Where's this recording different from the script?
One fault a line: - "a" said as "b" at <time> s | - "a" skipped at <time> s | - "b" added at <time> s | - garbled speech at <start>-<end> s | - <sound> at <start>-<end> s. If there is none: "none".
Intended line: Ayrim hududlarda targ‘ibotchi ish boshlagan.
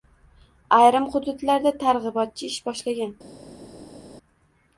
none